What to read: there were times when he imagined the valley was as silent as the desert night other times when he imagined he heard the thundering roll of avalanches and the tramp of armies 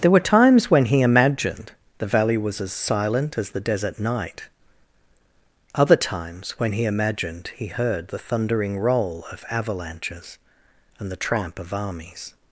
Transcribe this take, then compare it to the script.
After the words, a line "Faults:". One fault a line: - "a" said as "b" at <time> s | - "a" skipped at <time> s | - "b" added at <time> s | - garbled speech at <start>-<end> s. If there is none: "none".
there were times when he imagined the valley was as silent as the desert night other times when he imagined he heard the thundering roll of avalanches and the tramp of armies
Faults:
none